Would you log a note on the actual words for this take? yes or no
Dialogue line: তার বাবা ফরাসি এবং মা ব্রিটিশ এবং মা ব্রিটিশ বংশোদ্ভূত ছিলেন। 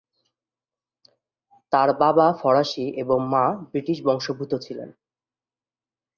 yes